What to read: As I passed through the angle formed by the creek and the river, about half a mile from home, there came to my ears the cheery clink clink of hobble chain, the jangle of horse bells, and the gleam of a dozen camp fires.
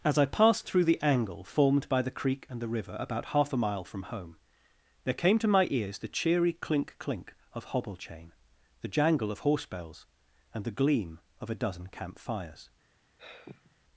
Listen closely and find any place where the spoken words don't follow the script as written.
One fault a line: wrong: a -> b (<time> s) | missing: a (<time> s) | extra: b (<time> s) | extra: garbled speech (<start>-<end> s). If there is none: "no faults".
no faults